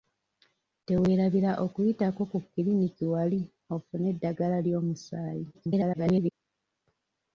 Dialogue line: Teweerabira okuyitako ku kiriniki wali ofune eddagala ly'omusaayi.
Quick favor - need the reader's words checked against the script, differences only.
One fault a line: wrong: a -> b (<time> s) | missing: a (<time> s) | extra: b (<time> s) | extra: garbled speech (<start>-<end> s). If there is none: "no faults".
extra: garbled speech (5.5-6.3 s)